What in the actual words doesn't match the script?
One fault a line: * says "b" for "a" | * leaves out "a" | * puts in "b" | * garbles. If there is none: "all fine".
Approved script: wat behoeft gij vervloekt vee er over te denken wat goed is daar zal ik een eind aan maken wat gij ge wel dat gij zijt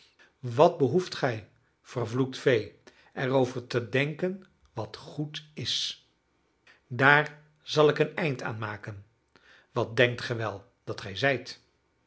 * says "denkt" for "gij"